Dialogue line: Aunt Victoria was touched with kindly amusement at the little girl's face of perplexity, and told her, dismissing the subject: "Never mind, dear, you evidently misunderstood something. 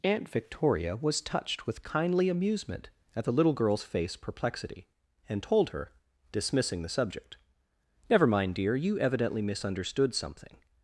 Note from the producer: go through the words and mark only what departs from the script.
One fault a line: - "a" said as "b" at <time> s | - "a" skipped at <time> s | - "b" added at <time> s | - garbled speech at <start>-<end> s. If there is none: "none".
- "of" skipped at 4.2 s